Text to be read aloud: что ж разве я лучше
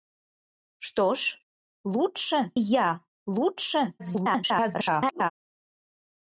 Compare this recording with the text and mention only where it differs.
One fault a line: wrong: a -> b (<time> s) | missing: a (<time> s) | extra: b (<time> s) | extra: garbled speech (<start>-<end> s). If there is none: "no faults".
wrong: разве -> лучше (1.8 s)
extra: garbled speech (4.0-5.3 s)